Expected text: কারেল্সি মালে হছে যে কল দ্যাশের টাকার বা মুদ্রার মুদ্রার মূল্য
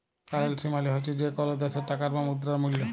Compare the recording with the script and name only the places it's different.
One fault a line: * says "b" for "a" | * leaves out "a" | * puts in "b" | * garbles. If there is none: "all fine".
* leaves out "মুদ্রার"